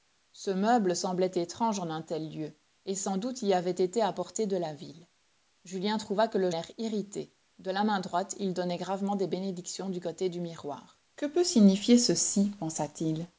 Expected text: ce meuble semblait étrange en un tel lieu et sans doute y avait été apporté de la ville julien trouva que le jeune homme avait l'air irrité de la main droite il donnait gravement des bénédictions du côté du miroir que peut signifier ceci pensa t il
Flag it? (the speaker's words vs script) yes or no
yes